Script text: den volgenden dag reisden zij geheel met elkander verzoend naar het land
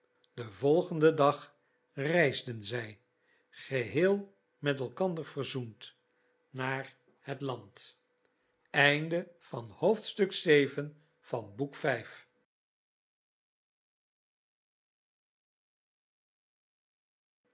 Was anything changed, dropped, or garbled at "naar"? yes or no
no